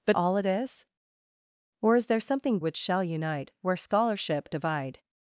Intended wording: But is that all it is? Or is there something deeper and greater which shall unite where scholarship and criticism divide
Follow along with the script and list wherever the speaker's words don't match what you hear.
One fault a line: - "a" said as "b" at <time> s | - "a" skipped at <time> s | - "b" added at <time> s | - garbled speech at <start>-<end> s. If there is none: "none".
- "is that" skipped at 0.2 s
- "deeper and greater" skipped at 2.6 s
- "and criticism" skipped at 4.5 s